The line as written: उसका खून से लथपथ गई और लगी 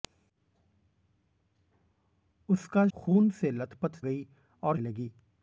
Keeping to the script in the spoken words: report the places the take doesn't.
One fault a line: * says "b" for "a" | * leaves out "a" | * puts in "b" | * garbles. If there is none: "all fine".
all fine